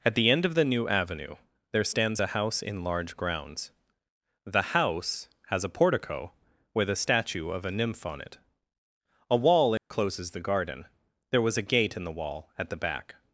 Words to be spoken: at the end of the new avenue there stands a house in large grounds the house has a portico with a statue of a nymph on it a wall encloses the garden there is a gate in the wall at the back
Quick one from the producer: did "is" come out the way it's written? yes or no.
no